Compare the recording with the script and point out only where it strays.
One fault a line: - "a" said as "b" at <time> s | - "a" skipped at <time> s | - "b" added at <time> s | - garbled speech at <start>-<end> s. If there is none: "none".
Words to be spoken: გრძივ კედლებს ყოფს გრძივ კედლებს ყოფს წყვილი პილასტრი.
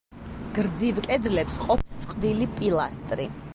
- "გრძივ კედლებს ყოფს" skipped at 2.0 s